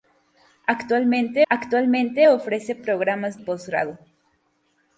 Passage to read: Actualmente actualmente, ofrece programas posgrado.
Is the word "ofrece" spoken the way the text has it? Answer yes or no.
yes